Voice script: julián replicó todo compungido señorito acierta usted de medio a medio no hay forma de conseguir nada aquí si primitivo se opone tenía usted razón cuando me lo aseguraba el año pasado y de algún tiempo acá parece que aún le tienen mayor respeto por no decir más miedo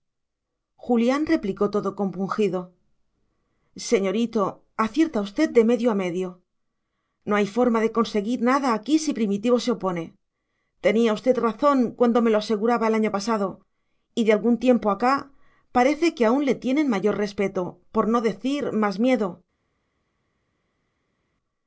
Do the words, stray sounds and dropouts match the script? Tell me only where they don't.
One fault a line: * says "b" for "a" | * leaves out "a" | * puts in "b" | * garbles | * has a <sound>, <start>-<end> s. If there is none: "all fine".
all fine